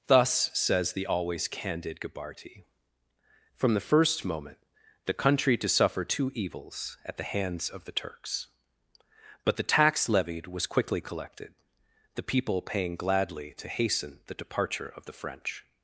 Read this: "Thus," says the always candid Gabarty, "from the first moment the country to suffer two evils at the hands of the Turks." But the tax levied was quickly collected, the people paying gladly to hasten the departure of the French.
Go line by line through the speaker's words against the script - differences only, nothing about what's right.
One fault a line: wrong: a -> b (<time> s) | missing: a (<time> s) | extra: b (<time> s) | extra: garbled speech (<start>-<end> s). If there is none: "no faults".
no faults